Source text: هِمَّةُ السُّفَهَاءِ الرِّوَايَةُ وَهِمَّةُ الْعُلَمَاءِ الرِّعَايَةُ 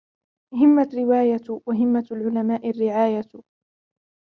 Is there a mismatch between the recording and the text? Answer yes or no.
yes